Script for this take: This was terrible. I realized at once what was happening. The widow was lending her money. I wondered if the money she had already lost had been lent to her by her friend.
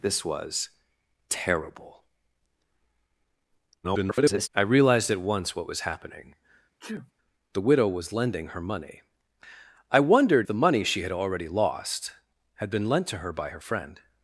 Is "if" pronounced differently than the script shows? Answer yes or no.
yes